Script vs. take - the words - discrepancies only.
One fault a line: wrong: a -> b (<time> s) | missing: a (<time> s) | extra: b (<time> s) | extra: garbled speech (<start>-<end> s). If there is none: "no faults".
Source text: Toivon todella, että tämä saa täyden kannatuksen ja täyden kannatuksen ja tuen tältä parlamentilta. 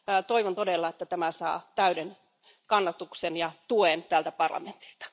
missing: täyden kannatuksen ja (3.5 s)